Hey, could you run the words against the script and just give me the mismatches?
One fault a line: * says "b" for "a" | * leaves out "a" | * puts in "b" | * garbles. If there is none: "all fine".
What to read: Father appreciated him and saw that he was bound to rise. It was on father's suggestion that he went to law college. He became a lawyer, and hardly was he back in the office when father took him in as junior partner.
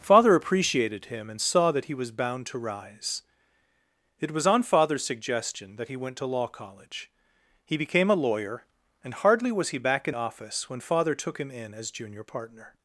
* leaves out "the"